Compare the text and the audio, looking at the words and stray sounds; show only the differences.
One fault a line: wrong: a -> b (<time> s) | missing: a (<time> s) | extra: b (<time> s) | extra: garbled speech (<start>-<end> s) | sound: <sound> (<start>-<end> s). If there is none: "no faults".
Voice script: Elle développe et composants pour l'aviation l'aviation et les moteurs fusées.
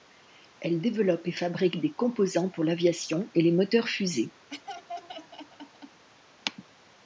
extra: fabrique des (1.3 s)
missing: l'aviation (3.3 s)
sound: laugh (4.5-6.0 s)